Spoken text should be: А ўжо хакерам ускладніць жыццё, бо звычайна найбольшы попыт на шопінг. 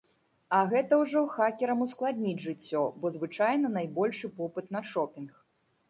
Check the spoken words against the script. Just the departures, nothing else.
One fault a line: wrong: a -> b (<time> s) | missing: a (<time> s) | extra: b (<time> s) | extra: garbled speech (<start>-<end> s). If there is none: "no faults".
extra: гэта (0.7 s)